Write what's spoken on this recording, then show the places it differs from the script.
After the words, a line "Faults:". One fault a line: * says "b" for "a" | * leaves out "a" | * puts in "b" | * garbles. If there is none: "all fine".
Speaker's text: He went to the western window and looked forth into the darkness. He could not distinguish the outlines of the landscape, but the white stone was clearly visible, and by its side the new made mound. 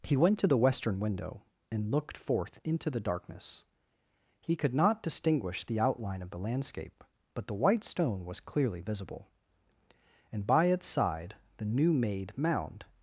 He went to the western window and looked forth into the darkness. He could not distinguish the outline of the landscape, but the white stone was clearly visible, and by its side the new made mound.
Faults:
* says "outline" for "outlines"